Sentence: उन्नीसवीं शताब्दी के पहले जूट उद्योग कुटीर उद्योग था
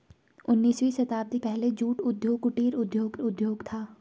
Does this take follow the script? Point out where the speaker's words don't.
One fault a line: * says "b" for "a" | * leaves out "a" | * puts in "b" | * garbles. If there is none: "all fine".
* leaves out "के"
* puts in "उद्योग"